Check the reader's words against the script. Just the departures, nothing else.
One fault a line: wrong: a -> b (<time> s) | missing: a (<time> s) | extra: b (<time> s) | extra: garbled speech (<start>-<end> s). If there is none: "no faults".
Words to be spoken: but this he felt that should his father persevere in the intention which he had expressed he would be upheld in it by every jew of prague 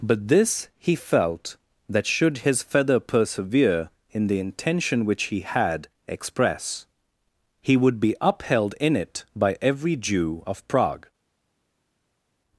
wrong: father -> feather (2.6 s)
wrong: expressed -> express (6.1 s)